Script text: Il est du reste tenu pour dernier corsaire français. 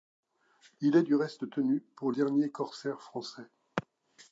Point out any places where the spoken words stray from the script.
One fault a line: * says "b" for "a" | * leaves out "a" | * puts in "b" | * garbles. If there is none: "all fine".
all fine